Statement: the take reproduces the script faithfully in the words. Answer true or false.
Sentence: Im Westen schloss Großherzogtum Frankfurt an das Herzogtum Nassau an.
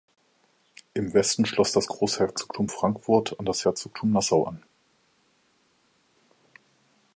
false